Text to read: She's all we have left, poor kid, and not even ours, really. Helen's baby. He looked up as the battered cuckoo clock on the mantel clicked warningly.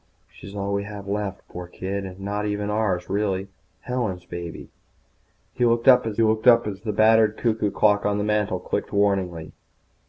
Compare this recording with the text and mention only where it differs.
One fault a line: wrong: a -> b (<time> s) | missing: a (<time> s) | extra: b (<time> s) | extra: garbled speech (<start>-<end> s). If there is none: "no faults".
extra: looked up as (6.2 s)